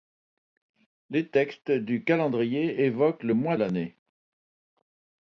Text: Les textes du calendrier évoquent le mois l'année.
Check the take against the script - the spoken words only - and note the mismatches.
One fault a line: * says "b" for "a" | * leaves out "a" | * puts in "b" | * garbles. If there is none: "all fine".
all fine